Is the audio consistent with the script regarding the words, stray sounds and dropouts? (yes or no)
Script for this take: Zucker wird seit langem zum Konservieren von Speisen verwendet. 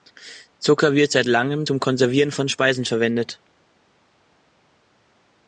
yes